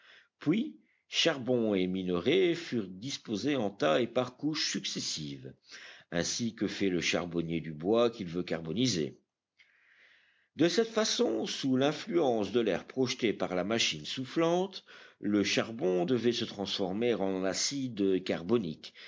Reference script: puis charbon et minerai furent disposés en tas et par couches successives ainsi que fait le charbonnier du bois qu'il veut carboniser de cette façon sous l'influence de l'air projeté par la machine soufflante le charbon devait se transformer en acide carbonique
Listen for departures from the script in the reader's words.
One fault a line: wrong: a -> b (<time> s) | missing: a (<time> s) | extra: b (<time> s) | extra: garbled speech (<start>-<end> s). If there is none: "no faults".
no faults